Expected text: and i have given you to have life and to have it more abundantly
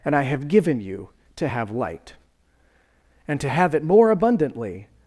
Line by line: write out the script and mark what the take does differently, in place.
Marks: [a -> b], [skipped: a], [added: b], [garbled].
and i have given you to have [life -> light] and to have it more abundantly